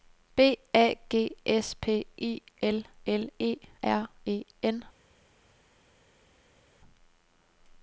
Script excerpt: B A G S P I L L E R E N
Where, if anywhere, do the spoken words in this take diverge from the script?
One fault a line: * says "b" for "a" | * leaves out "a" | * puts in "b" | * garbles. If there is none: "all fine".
all fine